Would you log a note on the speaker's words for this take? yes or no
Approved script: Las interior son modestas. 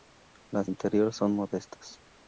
no